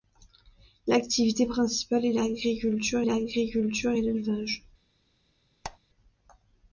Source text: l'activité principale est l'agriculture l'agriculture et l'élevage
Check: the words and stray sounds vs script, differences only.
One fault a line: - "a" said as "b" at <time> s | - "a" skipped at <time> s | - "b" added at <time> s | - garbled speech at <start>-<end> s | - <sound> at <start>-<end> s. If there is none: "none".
- squeak at 5.6-5.8 s